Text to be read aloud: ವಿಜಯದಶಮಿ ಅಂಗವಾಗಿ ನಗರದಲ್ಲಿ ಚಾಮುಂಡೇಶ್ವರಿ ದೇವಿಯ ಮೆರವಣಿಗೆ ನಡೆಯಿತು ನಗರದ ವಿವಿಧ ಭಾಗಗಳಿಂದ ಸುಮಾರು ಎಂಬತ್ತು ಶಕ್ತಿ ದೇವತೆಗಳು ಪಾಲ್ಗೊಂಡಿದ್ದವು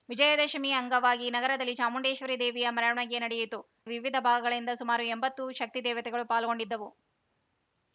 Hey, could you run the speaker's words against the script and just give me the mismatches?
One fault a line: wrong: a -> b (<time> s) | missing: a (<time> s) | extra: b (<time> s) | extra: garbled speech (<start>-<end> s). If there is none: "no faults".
missing: ನಗರದ (3.6 s)